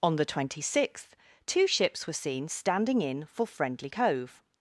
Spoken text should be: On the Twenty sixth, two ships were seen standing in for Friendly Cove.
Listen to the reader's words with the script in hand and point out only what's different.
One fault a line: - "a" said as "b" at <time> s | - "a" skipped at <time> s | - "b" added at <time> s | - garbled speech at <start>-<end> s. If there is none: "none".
none